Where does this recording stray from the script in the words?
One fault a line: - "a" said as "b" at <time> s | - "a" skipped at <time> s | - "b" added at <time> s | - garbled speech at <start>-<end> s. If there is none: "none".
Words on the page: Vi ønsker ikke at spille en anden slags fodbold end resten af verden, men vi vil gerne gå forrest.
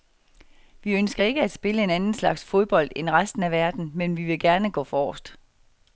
none